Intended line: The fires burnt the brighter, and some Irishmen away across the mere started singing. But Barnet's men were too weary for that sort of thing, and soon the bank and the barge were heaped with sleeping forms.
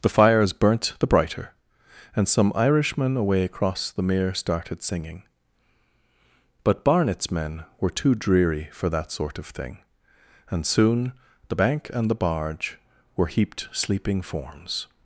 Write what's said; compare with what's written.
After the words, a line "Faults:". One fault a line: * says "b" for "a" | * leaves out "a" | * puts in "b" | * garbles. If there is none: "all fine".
The fires burnt the brighter, and some Irishmen away across the mere started singing. But Barnet's men were too dreary for that sort of thing, and soon the bank and the barge were heaped sleeping forms.
Faults:
* says "dreary" for "weary"
* leaves out "with"